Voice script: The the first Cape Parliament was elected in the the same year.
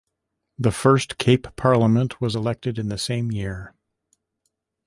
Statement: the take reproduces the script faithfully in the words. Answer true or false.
false